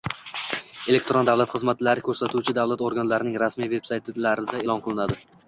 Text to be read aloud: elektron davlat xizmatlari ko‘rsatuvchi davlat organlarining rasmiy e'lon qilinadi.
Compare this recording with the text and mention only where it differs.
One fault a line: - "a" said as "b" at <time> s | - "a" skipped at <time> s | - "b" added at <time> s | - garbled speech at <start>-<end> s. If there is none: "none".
- "veb saytlarida" added at 3.8 s